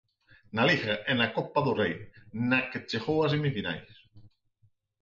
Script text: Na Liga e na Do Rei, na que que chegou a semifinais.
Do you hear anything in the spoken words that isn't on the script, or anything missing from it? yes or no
yes